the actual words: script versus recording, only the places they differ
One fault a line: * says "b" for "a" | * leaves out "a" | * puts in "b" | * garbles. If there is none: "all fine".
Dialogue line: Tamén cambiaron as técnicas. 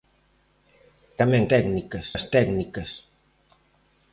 * says "técnicas" for "cambiaron"